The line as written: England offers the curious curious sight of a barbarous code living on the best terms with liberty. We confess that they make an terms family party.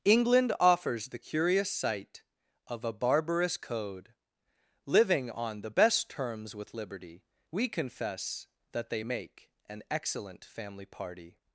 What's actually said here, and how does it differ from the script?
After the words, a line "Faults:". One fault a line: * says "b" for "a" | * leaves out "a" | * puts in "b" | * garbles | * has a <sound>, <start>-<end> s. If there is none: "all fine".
England offers the curious sight of a barbarous code living on the best terms with liberty. We confess that they make an excellent family party.
Faults:
* leaves out "curious"
* says "excellent" for "terms"